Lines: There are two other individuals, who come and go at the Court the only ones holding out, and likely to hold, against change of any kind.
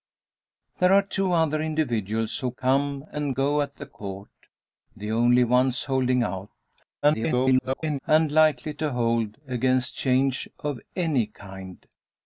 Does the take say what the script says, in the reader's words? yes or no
no